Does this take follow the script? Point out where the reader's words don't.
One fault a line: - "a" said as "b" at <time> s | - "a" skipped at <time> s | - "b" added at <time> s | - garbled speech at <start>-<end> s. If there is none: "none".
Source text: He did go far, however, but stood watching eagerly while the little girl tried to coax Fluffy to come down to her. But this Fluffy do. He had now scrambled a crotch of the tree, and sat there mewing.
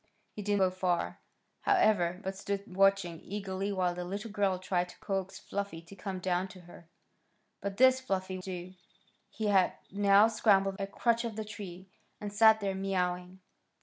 none